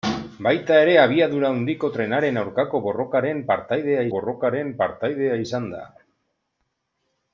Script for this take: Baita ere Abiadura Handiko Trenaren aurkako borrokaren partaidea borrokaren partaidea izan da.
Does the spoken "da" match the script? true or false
true